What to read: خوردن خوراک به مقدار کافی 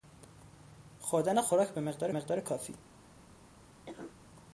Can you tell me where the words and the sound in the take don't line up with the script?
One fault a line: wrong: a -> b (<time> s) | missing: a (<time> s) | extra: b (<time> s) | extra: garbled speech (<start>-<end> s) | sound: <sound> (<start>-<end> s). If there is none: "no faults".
extra: مقدار (2.1 s)
sound: cough (3.9-4.2 s)